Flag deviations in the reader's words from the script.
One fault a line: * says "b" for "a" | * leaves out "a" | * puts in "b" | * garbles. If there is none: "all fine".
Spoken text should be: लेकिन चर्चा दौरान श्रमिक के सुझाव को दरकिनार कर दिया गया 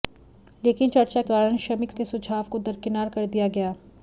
all fine